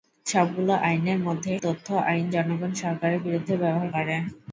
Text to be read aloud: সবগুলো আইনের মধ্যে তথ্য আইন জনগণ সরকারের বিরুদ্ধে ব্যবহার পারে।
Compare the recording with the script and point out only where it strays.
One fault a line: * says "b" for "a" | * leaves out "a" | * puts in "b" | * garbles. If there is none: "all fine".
all fine